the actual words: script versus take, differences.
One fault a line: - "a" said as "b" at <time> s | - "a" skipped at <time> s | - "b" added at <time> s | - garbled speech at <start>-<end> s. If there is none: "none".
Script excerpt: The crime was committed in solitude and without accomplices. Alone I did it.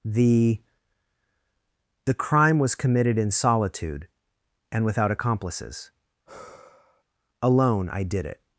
- "the" added at 2.0 s